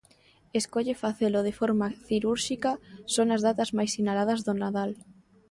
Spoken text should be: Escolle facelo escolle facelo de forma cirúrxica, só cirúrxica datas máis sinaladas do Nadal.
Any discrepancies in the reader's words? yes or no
yes